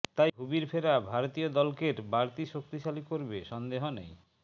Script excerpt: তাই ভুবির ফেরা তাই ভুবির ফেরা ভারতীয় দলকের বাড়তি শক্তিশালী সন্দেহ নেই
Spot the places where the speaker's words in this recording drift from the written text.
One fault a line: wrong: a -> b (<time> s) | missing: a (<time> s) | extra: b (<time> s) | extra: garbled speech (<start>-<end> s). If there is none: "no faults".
missing: তাই ভুবির ফেরা (0.9 s)
extra: করবে (3.1 s)